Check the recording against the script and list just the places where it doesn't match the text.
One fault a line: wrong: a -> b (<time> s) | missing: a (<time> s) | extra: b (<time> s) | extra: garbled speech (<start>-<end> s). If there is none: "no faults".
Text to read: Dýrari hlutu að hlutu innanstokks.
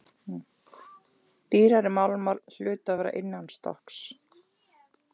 extra: málmar (2.0 s)
wrong: hlutu -> vera (3.0 s)